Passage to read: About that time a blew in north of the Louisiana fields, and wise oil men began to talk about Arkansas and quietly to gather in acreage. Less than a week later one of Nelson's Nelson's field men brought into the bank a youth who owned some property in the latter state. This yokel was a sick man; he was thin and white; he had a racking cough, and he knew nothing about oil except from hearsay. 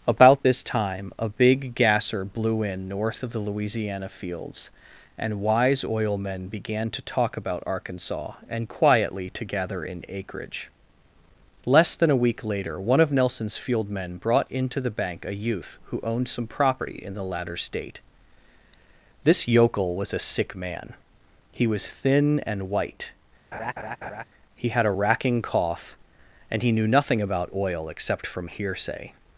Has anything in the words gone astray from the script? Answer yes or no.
yes